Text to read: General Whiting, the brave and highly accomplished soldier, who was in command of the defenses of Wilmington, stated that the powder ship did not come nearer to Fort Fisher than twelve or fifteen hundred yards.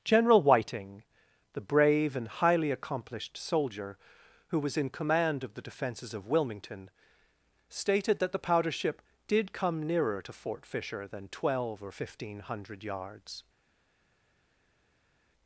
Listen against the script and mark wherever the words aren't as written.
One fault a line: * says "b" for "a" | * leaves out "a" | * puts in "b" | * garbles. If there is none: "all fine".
* leaves out "not"